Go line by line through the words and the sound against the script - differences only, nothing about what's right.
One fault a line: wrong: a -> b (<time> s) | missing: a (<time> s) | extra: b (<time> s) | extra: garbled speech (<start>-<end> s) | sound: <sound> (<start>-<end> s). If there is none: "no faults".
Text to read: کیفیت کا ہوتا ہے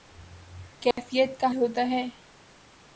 sound: dropout (0.9-1.0 s)